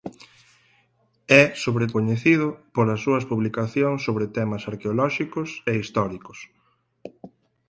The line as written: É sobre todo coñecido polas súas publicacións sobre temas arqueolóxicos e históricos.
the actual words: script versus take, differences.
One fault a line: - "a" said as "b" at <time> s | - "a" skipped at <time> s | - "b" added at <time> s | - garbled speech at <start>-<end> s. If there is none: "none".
- "todo" skipped at 1.9 s